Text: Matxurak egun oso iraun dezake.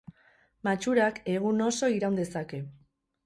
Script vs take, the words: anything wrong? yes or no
no